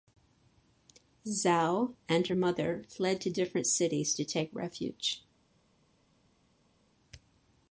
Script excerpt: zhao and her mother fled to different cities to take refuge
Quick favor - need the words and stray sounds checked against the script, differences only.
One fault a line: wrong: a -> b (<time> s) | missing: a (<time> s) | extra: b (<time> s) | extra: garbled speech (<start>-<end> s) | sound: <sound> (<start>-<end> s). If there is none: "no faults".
no faults